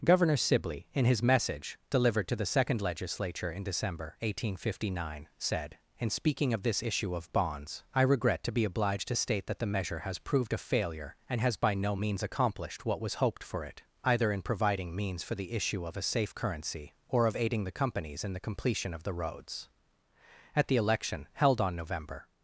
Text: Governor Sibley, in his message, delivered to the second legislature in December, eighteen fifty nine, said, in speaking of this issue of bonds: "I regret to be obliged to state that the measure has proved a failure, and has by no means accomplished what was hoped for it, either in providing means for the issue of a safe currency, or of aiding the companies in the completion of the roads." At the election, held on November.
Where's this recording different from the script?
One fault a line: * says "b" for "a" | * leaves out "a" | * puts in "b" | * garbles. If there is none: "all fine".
all fine